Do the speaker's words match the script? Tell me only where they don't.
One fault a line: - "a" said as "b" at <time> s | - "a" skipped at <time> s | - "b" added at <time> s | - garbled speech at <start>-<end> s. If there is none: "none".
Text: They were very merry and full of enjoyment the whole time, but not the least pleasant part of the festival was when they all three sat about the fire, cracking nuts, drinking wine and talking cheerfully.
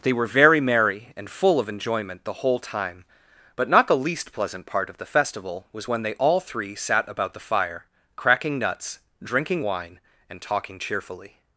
none